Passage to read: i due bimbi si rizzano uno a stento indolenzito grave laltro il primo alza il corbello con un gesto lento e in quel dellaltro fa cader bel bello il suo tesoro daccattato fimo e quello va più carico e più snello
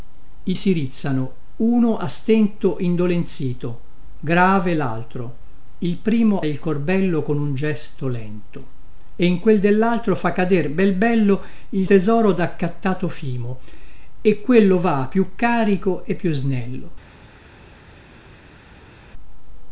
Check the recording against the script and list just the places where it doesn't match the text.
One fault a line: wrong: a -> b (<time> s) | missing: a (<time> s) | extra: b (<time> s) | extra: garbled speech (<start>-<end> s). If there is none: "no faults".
missing: due bimbi (0.6 s)
missing: alza (6.4 s)
missing: suo (11.9 s)